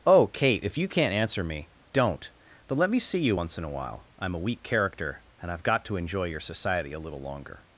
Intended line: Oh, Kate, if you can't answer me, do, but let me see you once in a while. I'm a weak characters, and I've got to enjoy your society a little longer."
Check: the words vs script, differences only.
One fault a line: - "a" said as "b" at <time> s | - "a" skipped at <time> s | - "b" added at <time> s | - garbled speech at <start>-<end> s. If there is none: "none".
- "do" said as "don't" at 1.9 s
- "characters" said as "character" at 4.6 s